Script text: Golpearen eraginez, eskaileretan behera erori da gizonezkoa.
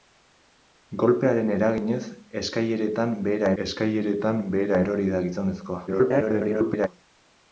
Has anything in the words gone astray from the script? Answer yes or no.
yes